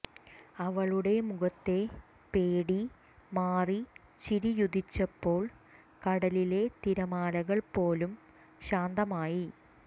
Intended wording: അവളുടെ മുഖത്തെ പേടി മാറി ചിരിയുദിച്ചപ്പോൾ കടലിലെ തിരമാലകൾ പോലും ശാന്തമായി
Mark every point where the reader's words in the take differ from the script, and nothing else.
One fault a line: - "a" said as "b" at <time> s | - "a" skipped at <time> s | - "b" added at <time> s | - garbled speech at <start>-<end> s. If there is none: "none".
none